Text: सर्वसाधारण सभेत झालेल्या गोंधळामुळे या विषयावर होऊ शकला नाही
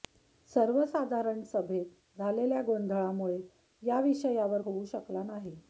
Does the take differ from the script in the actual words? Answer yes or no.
no